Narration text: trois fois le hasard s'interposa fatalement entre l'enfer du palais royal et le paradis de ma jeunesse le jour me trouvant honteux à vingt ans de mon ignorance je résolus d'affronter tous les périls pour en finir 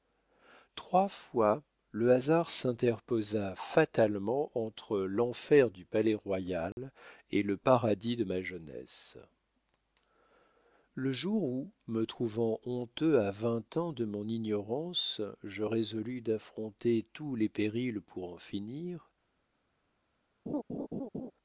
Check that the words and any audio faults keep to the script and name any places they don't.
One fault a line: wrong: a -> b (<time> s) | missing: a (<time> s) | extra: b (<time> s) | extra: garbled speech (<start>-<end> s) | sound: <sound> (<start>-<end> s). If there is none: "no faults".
sound: dropout (6.7-6.8 s)
extra: où (11.4 s)
sound: laugh (20.5-21.3 s)